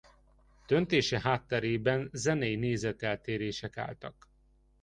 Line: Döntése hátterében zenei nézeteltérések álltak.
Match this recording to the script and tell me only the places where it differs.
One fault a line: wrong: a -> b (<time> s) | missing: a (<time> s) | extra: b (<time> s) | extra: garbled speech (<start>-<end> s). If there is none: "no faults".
no faults